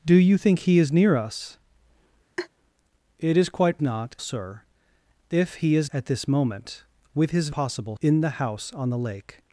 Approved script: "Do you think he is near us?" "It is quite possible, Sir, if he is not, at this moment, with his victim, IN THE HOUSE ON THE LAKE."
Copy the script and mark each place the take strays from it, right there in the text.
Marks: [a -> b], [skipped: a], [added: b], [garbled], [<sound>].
"Do you think he is near us?" [laugh] "It is quite [possible, -> not] Sir, if he is [skipped: not,] at this moment, with his [victim, -> possible] IN THE HOUSE ON THE LAKE."